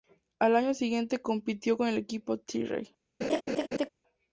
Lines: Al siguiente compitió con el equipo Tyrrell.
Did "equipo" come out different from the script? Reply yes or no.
no